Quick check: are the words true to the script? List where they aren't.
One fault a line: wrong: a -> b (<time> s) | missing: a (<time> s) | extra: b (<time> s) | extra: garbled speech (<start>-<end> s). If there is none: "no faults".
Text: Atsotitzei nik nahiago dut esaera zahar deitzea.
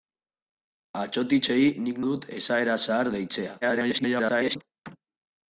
missing: nahiago (2.0 s)
extra: garbled speech (3.6-4.6 s)